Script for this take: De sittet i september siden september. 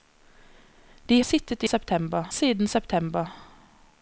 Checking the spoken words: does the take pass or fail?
pass